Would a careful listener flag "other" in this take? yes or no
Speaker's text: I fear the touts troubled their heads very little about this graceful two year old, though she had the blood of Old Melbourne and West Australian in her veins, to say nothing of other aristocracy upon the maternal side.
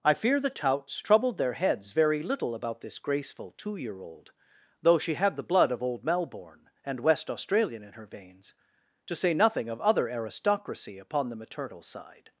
no